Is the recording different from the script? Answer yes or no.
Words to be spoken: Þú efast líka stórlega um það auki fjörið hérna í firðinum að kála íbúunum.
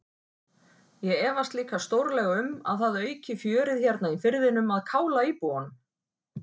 yes